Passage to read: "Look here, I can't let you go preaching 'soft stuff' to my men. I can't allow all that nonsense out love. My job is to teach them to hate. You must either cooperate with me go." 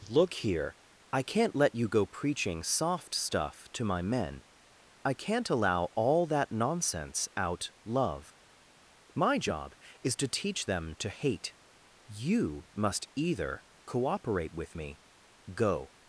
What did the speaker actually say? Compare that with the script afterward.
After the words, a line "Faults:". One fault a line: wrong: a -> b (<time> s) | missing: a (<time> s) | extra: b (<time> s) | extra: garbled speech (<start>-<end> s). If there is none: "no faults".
"Look here, I can't let you go preaching 'soft stuff' to my men. I can't allow all that nonsense out love. My job is to teach them to hate. You must either cooperate with me go."
Faults:
no faults